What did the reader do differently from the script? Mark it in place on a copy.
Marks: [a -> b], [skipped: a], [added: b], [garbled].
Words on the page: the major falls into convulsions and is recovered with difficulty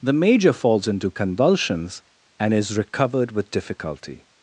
the major falls into convulsions and is recovered with difficulty